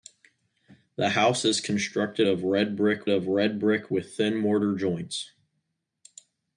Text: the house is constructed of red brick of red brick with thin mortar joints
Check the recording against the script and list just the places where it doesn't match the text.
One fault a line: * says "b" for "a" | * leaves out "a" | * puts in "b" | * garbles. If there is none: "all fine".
all fine